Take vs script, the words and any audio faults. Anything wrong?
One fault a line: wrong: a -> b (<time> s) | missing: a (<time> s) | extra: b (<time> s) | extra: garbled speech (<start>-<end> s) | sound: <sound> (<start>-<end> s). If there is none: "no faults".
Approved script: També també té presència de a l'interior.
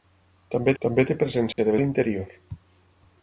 sound: dropout (1.5-1.6 s)